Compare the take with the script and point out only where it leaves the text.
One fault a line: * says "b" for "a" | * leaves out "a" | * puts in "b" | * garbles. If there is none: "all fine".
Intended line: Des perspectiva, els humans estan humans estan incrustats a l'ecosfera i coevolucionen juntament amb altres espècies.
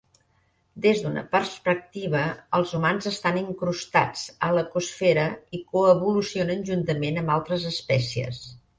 * puts in "d'una"
* leaves out "humans estan"